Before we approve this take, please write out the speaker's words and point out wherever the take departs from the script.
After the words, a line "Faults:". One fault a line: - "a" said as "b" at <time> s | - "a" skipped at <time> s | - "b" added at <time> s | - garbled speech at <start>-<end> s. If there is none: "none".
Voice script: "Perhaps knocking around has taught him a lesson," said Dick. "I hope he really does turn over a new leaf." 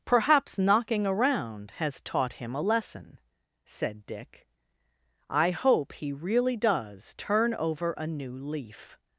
"Perhaps knocking around has taught him a lesson," said Dick. "I hope he really does turn over a new leaf."
Faults:
none